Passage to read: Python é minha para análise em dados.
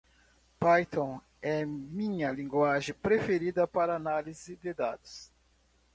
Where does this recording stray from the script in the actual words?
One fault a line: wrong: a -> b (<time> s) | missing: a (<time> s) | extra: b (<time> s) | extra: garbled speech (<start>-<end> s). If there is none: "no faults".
extra: linguagem preferida (2.3 s)
wrong: em -> de (4.5 s)